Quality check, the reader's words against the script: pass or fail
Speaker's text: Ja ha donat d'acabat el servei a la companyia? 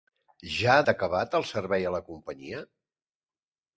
fail